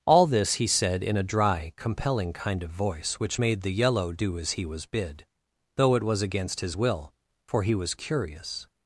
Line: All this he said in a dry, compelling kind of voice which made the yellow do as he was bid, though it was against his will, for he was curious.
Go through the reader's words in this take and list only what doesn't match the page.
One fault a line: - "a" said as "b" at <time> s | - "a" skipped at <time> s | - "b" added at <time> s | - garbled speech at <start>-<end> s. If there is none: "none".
none